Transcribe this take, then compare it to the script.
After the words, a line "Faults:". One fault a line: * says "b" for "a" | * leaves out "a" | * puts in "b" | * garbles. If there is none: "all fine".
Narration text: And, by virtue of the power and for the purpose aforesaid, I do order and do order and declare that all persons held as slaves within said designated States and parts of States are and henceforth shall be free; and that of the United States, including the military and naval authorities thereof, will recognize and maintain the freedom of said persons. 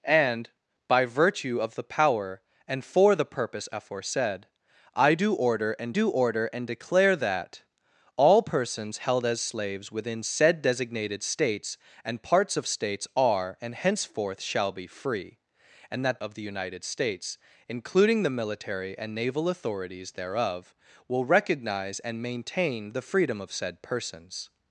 And, by virtue of the power and for the purpose aforesaid, I do order and do order and declare that all persons held as slaves within said designated States and parts of States are and henceforth shall be free; and that of the United States, including the military and naval authorities thereof, will recognize and maintain the freedom of said persons.
Faults:
all fine